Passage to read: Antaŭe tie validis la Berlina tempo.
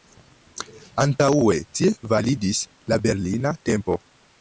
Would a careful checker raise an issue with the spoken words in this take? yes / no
no